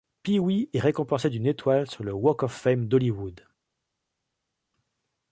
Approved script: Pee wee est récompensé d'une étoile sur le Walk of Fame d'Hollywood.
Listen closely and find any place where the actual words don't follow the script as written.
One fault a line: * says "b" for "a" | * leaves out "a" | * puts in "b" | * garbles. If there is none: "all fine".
all fine